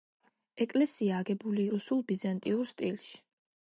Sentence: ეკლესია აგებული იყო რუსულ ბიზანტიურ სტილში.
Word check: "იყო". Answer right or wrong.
wrong